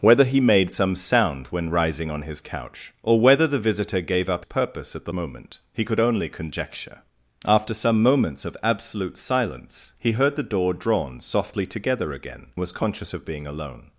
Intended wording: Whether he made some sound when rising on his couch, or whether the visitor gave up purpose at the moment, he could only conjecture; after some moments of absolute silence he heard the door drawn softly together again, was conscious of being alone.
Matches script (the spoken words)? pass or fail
pass